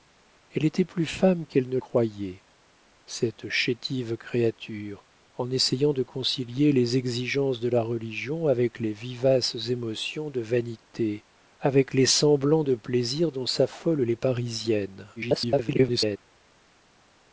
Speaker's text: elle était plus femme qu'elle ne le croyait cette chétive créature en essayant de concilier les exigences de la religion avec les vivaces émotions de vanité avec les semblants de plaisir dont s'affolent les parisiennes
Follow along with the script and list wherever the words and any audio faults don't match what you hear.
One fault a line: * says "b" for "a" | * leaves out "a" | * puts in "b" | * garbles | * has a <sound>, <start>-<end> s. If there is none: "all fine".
* leaves out "le"
* garbles